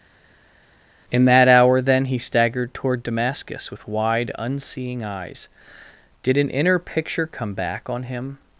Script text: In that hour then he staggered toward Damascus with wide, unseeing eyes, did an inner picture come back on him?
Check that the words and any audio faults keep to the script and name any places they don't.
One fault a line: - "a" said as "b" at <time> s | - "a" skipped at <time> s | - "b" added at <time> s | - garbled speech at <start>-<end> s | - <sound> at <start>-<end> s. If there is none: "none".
none